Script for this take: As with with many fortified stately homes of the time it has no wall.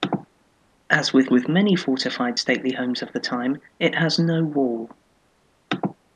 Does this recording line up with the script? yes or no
yes